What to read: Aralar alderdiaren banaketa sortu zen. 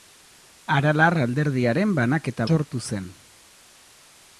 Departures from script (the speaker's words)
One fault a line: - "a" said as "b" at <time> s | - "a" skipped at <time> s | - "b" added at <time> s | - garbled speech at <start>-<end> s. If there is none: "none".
none